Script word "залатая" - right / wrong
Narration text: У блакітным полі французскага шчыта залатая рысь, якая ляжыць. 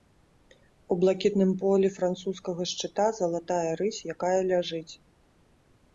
right